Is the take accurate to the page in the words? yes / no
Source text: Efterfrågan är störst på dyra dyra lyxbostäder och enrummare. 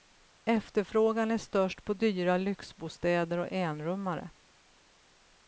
no